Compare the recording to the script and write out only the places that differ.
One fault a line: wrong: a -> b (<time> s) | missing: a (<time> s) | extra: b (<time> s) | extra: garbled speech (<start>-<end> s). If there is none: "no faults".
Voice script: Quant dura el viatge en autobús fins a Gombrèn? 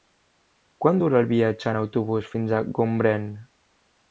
no faults